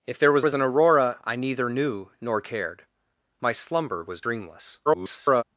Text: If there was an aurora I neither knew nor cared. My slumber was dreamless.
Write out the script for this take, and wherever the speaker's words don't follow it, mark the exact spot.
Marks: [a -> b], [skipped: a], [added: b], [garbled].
If there was [added: was] an aurora I neither knew nor cared. My slumber was dreamless. [garbled]